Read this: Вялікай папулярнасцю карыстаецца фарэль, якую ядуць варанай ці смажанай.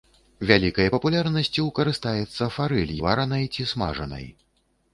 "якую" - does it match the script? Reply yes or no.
no